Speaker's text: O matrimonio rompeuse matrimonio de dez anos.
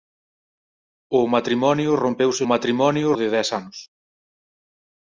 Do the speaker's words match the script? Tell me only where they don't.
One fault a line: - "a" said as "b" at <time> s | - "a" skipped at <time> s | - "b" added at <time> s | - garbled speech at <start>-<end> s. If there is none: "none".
none